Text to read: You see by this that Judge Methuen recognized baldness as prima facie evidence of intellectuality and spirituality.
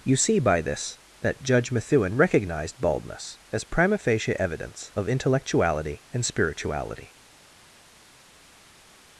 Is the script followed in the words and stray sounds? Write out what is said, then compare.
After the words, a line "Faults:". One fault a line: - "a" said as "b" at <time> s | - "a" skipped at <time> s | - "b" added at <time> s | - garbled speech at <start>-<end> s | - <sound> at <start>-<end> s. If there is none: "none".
You see by this that Judge Methuen recognized baldness as prima facie evidence of intellectuality and spirituality.
Faults:
none